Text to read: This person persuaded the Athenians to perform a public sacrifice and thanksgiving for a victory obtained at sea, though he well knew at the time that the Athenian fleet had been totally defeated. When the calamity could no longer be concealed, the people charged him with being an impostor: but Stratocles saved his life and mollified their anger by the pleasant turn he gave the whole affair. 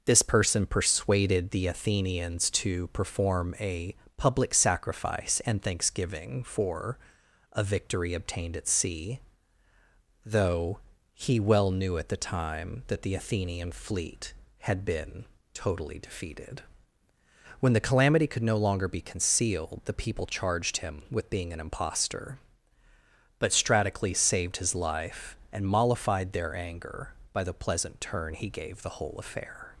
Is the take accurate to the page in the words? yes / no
yes